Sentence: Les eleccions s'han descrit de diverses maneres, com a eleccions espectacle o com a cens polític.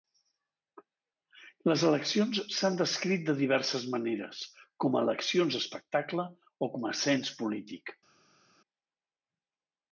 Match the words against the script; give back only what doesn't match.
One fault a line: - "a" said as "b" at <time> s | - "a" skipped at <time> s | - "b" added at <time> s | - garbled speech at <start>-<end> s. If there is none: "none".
none